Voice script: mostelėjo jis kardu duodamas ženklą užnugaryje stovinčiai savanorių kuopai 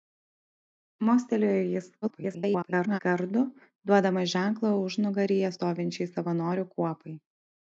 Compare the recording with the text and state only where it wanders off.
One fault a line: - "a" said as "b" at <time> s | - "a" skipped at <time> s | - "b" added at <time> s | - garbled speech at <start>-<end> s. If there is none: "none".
- garbled speech at 2.0-3.0 s